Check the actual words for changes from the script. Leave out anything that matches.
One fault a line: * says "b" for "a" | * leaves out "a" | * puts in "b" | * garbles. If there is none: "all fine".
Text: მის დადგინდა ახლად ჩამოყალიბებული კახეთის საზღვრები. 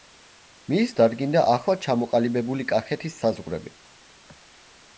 all fine